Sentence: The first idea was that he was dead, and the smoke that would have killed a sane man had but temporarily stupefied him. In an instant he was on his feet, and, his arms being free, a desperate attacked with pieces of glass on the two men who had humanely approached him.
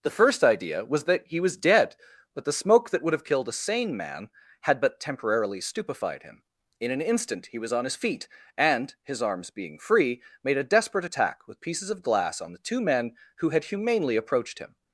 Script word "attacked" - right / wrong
wrong